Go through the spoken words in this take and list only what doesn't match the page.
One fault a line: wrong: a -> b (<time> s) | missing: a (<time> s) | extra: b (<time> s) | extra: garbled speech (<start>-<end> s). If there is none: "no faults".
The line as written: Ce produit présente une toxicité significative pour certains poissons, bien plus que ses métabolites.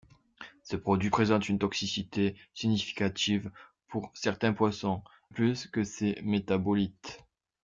missing: bien (5.0 s)